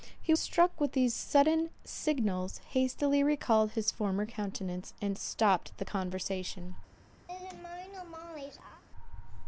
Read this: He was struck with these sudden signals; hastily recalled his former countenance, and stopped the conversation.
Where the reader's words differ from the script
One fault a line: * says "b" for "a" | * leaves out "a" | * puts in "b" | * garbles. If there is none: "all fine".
* leaves out "was"